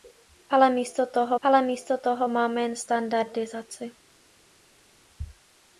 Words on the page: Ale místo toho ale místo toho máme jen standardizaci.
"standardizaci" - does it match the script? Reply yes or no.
yes